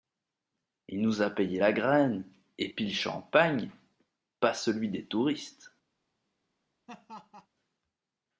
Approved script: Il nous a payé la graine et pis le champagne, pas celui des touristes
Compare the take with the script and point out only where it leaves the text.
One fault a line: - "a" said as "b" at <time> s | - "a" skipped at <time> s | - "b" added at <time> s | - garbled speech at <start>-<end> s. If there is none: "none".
none